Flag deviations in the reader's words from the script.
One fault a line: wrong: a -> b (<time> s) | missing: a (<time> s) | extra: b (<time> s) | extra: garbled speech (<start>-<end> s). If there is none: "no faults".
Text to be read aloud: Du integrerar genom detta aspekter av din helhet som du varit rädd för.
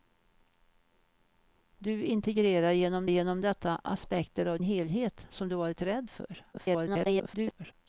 extra: genom (3.0 s)
missing: din (4.6 s)
extra: garbled speech (6.5-7.7 s)